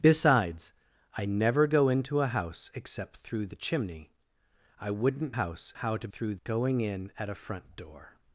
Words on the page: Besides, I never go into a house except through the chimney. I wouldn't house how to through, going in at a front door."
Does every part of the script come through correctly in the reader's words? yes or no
yes